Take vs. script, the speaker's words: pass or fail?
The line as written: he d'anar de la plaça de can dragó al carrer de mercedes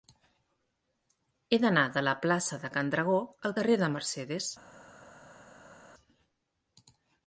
pass